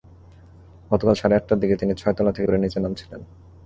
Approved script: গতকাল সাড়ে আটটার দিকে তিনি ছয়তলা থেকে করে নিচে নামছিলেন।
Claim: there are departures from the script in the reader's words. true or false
false